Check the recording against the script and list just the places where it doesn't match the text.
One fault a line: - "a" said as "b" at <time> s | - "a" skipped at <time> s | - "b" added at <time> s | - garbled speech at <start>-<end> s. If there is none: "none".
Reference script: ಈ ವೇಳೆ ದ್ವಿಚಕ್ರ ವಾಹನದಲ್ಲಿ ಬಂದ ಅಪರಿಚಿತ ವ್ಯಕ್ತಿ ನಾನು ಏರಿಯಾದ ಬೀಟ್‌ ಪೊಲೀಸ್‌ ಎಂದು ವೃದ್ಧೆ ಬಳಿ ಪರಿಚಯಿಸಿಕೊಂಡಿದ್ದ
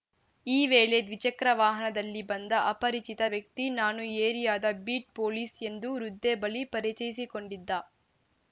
none